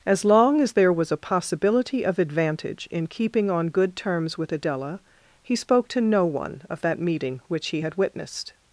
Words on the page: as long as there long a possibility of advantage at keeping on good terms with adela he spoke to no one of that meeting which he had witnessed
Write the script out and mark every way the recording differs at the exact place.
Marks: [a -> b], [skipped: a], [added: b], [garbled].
as long as there [long -> was] a possibility of advantage [at -> in] keeping on good terms with adela he spoke to no one of that meeting which he had witnessed